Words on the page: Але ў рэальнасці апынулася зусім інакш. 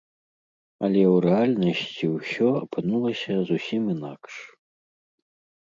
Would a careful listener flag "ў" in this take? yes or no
no